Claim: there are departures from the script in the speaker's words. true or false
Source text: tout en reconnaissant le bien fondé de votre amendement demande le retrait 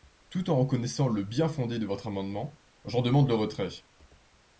true